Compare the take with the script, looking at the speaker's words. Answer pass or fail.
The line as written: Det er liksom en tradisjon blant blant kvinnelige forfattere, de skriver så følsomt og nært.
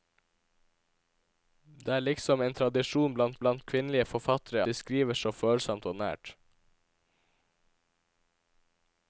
pass